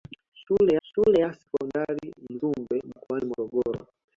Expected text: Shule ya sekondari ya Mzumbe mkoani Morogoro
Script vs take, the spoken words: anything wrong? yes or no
yes